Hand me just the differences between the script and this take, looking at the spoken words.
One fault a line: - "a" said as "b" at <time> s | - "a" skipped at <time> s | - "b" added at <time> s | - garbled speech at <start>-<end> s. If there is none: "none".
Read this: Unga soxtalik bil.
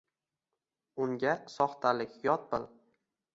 - "yot" added at 2.3 s